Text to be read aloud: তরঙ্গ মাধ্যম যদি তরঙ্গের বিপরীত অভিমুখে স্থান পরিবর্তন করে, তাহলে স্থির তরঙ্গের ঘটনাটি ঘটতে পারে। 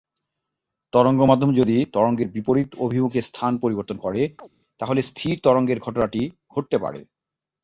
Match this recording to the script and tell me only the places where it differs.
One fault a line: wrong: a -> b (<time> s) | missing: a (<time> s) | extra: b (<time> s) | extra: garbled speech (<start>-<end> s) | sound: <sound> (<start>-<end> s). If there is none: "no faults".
sound: chirp (4.4-4.5 s)